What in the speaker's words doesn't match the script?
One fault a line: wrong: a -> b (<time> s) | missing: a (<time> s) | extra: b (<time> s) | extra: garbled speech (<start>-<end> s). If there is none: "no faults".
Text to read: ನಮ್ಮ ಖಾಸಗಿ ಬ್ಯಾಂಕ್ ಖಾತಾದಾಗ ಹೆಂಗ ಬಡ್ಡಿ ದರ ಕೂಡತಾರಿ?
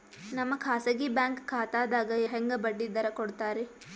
no faults